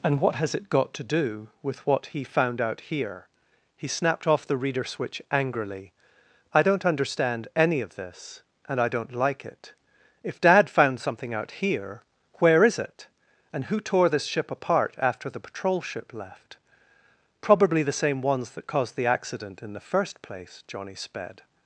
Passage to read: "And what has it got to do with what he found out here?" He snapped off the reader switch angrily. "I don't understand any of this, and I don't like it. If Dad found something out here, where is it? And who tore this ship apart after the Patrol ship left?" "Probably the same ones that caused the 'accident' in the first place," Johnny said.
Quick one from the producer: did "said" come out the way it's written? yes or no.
no